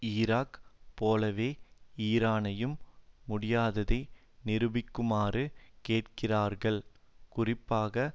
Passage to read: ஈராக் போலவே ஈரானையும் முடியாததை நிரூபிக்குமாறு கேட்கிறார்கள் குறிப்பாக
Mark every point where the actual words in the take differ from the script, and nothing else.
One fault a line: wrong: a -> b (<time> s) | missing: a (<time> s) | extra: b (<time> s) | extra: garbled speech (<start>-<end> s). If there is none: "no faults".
no faults